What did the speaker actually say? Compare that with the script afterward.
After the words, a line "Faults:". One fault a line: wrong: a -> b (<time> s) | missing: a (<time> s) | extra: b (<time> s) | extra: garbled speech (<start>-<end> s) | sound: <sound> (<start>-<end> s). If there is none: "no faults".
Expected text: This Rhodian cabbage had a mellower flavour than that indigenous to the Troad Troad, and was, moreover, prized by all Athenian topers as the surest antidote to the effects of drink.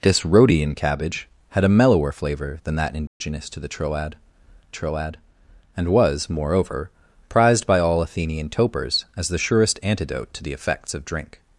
This Rhodian cabbage had a mellower flavour than that indigenous to the Troad Troad, and was, moreover, prized by all Athenian topers as the surest antidote to the effects of drink.
Faults:
sound: dropout (3.1-3.2 s)